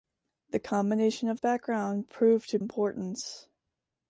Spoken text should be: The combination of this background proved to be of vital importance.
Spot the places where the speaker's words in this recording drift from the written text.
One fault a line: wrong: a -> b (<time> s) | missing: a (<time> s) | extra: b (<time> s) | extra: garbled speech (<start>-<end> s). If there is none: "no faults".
missing: this (1.4 s)
missing: be of vital (2.6 s)